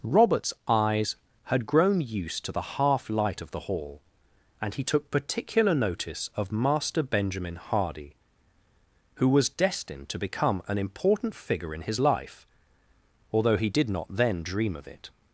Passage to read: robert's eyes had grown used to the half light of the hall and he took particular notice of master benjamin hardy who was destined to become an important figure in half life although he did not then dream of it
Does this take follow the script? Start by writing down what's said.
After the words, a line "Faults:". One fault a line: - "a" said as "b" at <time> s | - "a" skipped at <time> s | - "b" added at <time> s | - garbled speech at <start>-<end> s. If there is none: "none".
robert's eyes had grown used to the half light of the hall and he took particular notice of master benjamin hardy who was destined to become an important figure in his life although he did not then dream of it
Faults:
- "half" said as "his" at 11.8 s